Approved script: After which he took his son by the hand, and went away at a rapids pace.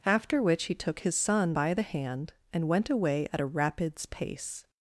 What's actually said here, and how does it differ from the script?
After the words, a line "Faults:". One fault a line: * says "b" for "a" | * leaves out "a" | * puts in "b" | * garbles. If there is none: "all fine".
After which he took his son by the hand, and went away at a rapids pace.
Faults:
all fine